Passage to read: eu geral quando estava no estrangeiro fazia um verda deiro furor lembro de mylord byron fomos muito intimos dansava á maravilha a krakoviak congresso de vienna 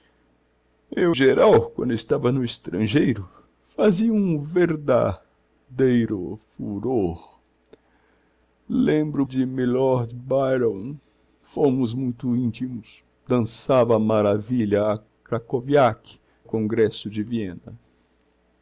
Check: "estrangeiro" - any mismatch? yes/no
no